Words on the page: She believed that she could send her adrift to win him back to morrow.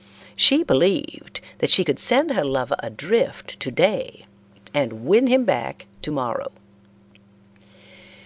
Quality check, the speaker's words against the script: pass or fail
fail